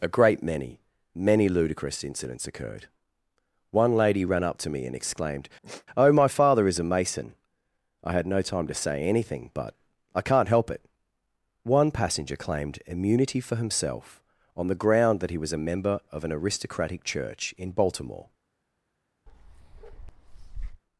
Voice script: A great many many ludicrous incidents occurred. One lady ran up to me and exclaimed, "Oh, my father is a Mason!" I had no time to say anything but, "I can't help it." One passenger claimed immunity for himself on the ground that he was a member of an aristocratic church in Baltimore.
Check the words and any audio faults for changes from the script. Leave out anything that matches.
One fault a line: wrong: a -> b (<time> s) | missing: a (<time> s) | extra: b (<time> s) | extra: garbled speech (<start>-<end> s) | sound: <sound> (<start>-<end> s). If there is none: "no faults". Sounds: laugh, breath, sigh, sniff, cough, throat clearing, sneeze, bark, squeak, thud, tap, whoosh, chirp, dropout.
sound: sigh (5.6-5.9 s)
sound: bark (19.3-20.8 s)